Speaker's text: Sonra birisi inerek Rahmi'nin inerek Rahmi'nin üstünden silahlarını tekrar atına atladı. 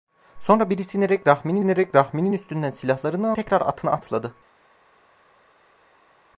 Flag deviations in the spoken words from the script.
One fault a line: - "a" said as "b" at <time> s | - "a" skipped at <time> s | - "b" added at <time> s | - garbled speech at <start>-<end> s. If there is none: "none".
none